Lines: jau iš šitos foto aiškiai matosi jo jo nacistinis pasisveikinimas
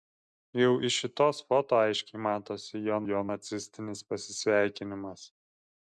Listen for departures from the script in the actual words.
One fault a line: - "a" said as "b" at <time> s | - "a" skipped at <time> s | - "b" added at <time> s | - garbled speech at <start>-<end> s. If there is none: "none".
none